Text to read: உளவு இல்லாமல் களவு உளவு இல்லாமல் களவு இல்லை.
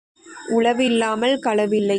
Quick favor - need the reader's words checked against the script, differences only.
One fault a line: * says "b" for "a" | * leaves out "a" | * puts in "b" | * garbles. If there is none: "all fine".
* leaves out "உளவு இல்லாமல் களவு"